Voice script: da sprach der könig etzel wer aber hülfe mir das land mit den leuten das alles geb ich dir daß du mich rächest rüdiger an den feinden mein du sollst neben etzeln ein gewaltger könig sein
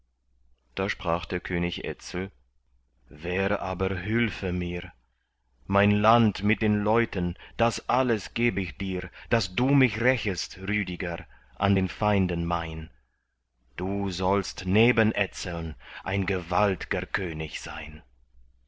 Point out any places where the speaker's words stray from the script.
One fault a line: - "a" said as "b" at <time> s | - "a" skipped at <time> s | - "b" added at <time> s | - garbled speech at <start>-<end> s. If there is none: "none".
- "das" said as "mein" at 5.7 s